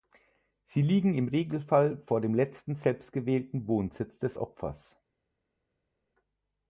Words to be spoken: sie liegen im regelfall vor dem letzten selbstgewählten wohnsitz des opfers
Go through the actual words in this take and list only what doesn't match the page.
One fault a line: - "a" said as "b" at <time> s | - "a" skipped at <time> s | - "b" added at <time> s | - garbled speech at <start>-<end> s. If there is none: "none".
none